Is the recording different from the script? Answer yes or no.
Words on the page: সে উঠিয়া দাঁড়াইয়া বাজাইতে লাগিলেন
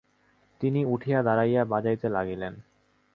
yes